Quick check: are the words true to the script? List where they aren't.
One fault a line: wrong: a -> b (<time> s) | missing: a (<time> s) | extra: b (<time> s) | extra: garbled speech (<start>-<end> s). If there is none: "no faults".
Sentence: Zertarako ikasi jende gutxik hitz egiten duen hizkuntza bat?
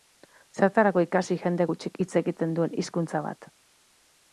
no faults